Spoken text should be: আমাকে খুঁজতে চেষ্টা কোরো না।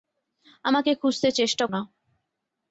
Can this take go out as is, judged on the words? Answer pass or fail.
fail